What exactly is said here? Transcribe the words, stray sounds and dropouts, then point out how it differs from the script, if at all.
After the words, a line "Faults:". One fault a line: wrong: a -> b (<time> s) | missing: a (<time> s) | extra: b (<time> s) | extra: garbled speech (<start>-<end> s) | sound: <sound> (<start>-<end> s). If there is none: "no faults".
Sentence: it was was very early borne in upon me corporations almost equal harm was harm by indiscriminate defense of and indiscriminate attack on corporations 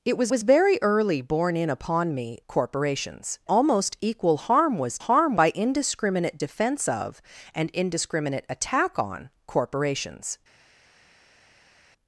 it was was very early borne in upon me corporations almost equal harm was harm by indiscriminate defense of and indiscriminate attack on corporations
Faults:
no faults